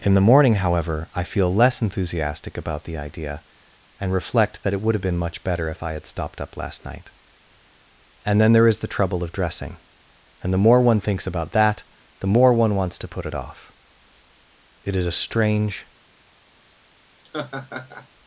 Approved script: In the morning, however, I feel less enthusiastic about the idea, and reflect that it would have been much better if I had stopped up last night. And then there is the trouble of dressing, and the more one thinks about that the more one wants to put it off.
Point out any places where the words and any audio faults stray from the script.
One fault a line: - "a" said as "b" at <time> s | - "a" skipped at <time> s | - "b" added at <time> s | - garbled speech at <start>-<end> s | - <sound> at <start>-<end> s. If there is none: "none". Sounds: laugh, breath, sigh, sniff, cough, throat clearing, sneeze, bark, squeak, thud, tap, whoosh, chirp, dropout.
- "It is a strange" added at 14.8 s
- laugh at 17.2-18.1 s